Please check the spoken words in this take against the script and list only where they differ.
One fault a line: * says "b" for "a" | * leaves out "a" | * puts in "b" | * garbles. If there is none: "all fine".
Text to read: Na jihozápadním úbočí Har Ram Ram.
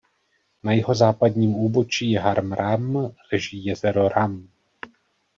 * puts in "leží jezero"